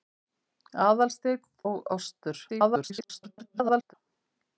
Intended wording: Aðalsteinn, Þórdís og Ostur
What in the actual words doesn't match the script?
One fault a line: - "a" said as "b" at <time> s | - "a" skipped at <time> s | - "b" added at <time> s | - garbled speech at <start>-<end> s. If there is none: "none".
- "Þórdís" skipped at 1.4 s
- garbled speech at 2.5-3.9 s